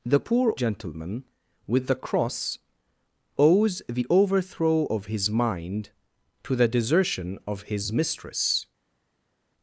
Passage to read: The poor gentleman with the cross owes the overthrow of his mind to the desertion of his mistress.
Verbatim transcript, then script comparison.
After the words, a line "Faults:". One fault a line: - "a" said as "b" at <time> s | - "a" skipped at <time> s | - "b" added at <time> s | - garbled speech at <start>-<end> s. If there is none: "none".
The poor gentleman with the cross owes the overthrow of his mind to the desertion of his mistress.
Faults:
none